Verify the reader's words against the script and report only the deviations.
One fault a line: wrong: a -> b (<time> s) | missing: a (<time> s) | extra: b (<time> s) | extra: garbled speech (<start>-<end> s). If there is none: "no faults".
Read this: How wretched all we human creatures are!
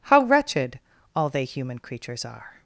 wrong: we -> they (1.3 s)